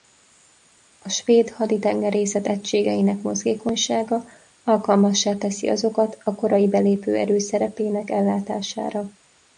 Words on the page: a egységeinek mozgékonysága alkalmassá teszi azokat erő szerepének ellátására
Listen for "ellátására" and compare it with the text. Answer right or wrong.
right